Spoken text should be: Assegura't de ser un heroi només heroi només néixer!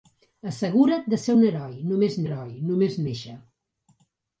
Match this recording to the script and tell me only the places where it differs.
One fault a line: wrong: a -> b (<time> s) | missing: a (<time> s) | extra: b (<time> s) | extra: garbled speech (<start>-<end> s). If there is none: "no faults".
no faults